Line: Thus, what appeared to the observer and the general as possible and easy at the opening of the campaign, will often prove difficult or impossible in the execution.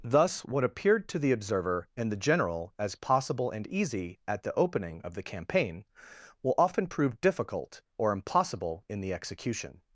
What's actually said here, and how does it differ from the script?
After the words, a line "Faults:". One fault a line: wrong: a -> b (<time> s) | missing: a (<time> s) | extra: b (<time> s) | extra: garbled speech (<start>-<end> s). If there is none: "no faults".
Thus, what appeared to the observer and the general as possible and easy at the opening of the campaign, will often prove difficult or impossible in the execution.
Faults:
no faults